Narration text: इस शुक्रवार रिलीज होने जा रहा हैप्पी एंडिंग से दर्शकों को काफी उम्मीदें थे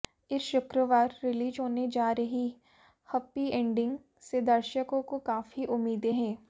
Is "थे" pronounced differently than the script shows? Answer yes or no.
yes